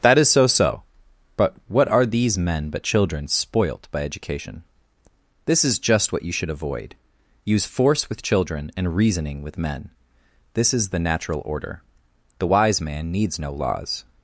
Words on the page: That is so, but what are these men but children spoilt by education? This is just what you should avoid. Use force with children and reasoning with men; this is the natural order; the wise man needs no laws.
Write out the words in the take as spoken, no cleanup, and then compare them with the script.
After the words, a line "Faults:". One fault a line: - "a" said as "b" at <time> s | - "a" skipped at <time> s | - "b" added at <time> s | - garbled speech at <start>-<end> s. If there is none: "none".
That is so so, but what are these men but children spoilt by education? This is just what you should avoid. Use force with children and reasoning with men; this is the natural order; the wise man needs no laws.
Faults:
- "so" added at 0.5 s